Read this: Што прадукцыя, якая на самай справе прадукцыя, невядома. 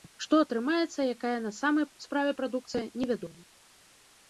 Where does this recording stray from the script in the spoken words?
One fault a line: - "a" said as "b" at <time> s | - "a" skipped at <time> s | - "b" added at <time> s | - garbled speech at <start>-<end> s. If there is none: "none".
- "прадукцыя" said as "атрымаецца" at 0.4 s